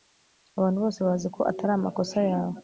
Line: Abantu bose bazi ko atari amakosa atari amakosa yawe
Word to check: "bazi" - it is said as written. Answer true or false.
true